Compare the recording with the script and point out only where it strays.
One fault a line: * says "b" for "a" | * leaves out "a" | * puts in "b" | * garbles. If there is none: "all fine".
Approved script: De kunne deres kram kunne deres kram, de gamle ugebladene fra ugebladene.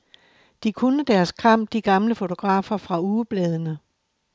* leaves out "kunne deres kram"
* says "fotografer" for "ugebladene"